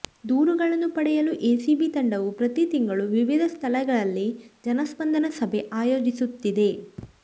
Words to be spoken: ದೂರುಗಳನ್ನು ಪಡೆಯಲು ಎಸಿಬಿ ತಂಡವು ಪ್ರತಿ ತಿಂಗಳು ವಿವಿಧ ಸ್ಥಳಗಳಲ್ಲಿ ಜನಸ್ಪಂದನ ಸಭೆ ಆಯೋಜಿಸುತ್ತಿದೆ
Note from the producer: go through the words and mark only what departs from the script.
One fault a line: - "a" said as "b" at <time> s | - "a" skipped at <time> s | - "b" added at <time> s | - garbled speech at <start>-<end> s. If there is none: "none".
none